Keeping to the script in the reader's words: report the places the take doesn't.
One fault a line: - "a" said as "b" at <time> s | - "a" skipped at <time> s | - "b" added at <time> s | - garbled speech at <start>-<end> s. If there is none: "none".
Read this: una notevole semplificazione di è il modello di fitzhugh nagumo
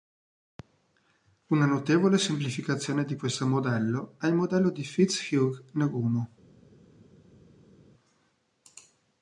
- "questo modello" added at 3.1 s